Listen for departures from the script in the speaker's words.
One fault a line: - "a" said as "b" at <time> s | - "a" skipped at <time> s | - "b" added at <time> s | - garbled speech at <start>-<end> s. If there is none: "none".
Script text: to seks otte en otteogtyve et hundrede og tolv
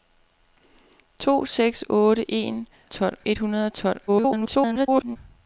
- "otteogtyve" said as "tolv" at 2.9 s
- garbled speech at 4.1-5.2 s